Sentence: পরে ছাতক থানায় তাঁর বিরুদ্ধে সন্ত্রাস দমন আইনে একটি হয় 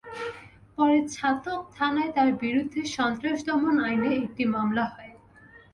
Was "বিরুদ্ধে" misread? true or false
false